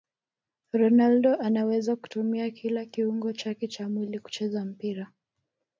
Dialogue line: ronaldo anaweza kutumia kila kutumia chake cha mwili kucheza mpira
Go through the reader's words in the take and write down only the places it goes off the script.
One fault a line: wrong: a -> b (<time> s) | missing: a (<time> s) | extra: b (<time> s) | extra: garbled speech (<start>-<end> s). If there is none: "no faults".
wrong: kutumia -> kiungo (2.9 s)